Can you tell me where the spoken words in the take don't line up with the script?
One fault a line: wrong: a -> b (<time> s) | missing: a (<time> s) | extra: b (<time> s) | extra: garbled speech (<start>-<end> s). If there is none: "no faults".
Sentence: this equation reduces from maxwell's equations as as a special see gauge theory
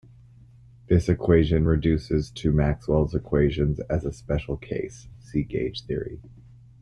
wrong: from -> to (2.3 s)
missing: as (4.0 s)
extra: case (4.6 s)